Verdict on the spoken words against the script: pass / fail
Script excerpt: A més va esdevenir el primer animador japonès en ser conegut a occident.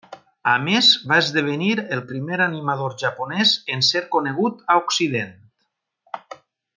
pass